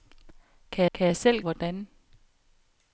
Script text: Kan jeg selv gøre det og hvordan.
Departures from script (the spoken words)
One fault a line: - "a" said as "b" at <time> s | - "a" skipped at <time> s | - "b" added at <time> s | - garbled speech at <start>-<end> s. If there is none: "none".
- "kan" added at 0.9 s
- "gøre det og" skipped at 1.4 s